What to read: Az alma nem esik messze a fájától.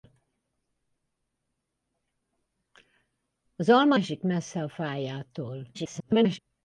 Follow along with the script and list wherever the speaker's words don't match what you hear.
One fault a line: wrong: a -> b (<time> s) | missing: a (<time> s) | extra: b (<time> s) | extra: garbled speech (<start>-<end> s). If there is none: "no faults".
missing: nem (4.0 s)
extra: garbled speech (5.7-6.4 s)